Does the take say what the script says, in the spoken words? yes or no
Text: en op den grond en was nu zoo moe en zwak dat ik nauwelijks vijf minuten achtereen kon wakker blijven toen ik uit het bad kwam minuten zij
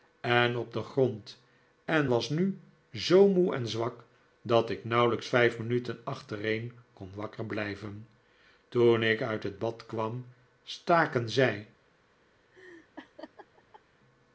no